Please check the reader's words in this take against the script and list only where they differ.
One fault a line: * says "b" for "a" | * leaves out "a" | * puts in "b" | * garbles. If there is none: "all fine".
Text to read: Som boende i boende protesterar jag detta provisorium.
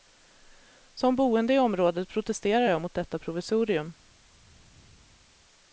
* says "området" for "boende"
* puts in "mot"